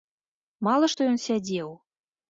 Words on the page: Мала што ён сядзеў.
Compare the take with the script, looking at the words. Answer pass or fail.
pass